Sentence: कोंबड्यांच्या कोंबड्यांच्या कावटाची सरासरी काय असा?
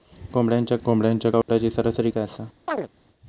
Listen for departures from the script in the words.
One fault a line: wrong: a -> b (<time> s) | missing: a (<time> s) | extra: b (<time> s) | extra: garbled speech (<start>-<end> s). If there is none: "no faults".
no faults